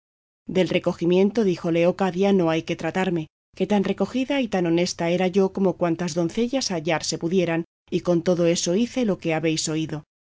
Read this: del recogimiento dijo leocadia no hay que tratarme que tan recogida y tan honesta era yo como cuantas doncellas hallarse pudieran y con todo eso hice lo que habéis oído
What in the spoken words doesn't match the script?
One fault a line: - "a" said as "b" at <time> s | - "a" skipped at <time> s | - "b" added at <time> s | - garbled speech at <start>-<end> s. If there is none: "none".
none